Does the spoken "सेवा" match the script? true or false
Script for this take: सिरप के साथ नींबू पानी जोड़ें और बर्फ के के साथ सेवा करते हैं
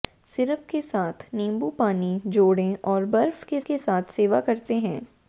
true